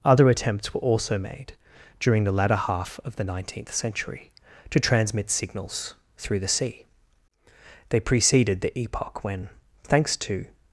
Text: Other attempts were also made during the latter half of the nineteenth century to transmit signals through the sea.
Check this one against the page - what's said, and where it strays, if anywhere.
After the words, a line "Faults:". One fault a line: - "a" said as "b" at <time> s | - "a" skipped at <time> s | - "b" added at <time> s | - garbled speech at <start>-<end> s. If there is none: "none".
Other attempts were also made during the latter half of the nineteenth century to transmit signals through the sea. They preceded the epoch when, thanks to
Faults:
- "They preceded the epoch when thanks to" added at 7.9 s